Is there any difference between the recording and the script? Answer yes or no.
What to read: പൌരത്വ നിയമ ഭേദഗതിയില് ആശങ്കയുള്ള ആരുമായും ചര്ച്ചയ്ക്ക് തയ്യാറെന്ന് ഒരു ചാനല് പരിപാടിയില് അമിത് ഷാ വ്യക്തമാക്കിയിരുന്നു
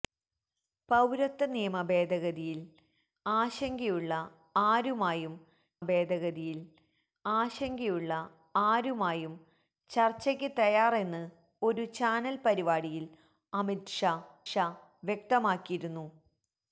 yes